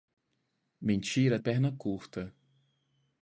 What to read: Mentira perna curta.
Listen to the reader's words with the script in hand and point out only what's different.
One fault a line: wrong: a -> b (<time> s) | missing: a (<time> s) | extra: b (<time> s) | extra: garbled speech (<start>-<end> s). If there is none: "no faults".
no faults